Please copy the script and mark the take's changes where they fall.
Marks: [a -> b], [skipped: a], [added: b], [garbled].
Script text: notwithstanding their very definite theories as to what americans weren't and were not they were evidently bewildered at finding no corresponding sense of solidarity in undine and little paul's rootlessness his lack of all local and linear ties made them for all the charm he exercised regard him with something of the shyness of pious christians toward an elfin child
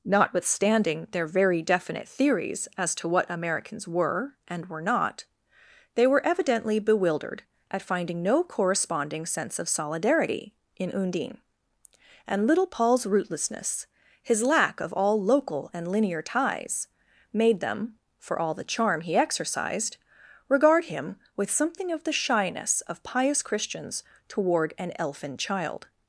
notwithstanding their very definite theories as to what americans [weren't -> were] and were not they were evidently bewildered at finding no corresponding sense of solidarity in undine and little paul's rootlessness his lack of all local and linear ties made them for all the charm he exercised regard him with something of the shyness of pious christians toward an elfin child